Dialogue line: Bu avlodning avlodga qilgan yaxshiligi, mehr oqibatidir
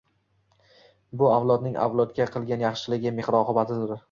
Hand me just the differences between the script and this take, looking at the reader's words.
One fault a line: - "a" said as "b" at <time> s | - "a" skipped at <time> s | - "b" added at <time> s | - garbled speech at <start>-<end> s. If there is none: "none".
none